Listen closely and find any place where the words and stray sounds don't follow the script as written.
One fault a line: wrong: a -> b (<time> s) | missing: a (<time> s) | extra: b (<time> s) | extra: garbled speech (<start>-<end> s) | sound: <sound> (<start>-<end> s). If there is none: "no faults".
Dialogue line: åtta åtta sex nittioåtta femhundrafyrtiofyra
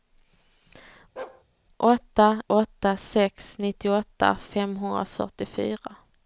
sound: bark (1.2-1.4 s)